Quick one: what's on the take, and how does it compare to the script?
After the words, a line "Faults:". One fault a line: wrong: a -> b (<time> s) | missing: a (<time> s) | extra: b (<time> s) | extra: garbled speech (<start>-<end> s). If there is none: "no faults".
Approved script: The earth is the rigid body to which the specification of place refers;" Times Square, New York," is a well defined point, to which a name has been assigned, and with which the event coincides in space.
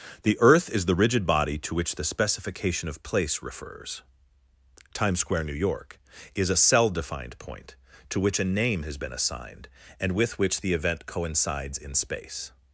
The earth is the rigid body to which the specification of place refers;" Times Square, New York," is a cell defined point, to which a name has been assigned, and with which the event coincides in space.
Faults:
wrong: well -> cell (6.6 s)